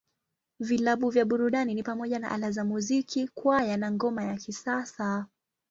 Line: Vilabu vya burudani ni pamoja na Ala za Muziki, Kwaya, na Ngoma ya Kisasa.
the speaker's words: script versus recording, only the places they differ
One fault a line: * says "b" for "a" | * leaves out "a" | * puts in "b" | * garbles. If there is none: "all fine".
all fine